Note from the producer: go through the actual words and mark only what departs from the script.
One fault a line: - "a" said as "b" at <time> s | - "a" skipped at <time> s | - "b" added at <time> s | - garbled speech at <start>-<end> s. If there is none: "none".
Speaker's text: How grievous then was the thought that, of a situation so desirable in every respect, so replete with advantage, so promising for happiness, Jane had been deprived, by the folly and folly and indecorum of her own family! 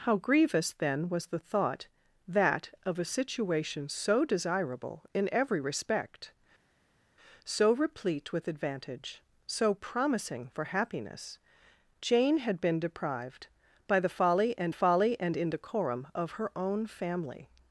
none